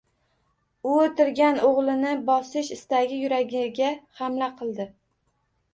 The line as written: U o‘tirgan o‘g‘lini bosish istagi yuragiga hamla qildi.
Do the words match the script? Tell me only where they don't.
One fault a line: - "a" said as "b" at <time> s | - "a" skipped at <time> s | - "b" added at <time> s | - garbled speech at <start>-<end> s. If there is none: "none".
none